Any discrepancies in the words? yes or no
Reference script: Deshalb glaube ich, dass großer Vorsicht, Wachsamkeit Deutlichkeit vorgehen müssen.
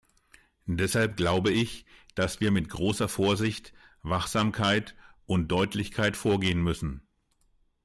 yes